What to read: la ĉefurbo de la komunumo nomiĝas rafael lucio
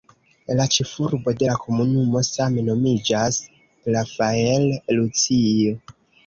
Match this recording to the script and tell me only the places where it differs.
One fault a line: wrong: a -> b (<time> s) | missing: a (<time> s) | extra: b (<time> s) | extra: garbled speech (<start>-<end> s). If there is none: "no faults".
extra: same (2.3 s)